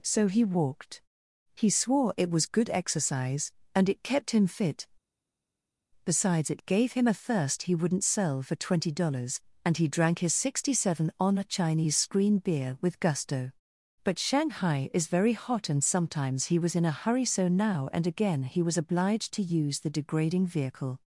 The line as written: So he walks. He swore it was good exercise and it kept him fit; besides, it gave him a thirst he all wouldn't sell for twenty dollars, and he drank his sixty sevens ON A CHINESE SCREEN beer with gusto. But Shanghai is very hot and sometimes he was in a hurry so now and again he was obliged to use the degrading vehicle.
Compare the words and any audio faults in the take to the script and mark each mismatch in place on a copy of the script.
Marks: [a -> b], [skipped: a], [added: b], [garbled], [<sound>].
So he [walks. -> walked] He swore it was good exercise and it kept him fit; besides, it gave him a thirst he [skipped: all] wouldn't sell for twenty dollars, and he drank his sixty [sevens -> seven] ON A CHINESE SCREEN beer with gusto. But Shanghai is very hot and sometimes he was in a hurry so now and again he was obliged to use the degrading vehicle.